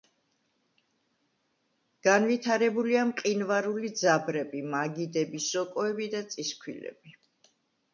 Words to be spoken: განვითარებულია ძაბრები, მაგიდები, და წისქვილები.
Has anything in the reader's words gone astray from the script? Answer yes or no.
yes